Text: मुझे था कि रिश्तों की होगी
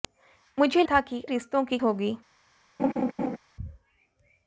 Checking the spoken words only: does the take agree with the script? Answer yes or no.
yes